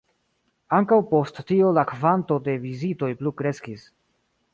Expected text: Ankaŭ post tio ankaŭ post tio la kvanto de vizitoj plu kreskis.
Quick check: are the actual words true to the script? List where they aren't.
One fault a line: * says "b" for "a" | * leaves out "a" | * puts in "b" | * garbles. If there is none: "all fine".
* leaves out "ankaŭ post tio"